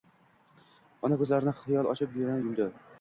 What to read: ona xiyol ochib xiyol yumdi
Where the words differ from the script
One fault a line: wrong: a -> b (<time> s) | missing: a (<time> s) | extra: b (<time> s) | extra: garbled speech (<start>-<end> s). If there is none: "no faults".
extra: ko‘zlarini (1.2 s)
wrong: xiyol -> yana (2.2 s)